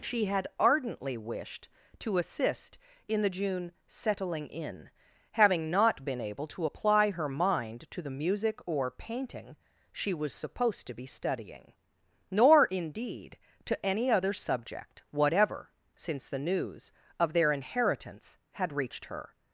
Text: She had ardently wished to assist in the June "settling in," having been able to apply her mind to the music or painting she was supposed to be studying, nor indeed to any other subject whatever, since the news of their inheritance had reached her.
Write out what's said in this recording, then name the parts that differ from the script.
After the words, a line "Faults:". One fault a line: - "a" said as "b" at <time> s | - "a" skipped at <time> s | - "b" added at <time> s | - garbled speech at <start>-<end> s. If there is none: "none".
She had ardently wished to assist in the June "settling in," having not been able to apply her mind to the music or painting she was supposed to be studying, nor indeed to any other subject whatever, since the news of their inheritance had reached her.
Faults:
- "not" added at 5.7 s